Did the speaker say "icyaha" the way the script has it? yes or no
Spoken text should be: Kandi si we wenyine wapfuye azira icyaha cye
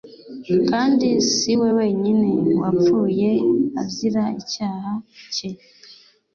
yes